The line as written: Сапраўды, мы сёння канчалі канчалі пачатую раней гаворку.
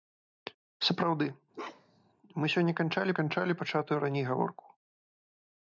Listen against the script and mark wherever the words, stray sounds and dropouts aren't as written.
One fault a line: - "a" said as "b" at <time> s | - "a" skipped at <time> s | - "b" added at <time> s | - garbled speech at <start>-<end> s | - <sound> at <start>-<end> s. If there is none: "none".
- bark at 1.5-2.1 s